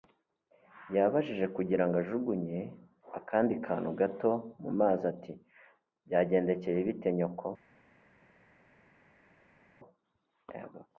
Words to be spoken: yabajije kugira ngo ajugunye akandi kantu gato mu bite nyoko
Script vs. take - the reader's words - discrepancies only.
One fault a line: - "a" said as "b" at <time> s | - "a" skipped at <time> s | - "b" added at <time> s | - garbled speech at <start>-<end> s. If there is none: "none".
- "mazi ati byagendekeye" added at 4.8 s